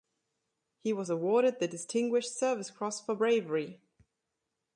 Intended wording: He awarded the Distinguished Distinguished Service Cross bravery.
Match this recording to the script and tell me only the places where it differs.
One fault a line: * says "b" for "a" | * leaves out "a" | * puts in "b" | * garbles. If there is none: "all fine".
* puts in "was"
* leaves out "Distinguished"
* puts in "for"